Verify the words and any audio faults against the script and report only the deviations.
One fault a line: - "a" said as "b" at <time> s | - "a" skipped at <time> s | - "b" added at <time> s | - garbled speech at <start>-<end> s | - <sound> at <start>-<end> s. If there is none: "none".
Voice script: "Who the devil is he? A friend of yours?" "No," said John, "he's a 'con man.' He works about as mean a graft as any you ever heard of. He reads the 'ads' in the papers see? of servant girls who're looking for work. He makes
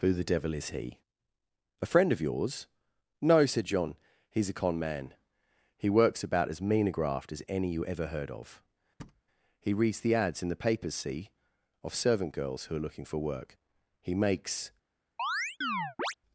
- thud at 9.0-9.2 s
- chirp at 15.2-16.1 s